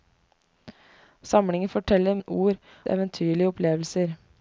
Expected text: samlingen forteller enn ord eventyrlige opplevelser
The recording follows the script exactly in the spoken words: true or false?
true